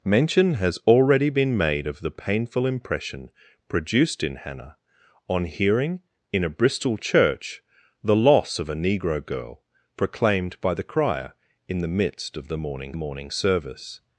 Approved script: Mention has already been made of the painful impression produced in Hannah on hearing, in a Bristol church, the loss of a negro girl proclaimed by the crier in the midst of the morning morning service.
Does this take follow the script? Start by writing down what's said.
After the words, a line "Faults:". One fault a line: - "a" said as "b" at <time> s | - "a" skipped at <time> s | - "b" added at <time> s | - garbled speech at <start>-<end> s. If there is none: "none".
Mention has already been made of the painful impression produced in Hannah on hearing, in a Bristol church, the loss of a negro girl proclaimed by the crier in the midst of the morning morning service.
Faults:
none